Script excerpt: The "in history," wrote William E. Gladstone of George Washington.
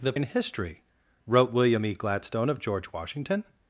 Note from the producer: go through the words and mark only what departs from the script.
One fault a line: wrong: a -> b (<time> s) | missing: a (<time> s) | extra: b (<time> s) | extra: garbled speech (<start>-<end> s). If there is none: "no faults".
no faults